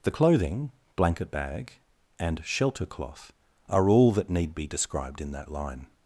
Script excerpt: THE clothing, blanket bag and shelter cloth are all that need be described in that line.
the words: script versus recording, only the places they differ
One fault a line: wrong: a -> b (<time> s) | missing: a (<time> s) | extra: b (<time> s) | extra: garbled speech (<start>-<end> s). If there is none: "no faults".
no faults